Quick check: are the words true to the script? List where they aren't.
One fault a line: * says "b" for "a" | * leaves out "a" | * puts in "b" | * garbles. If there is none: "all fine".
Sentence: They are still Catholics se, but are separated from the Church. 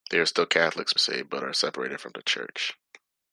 all fine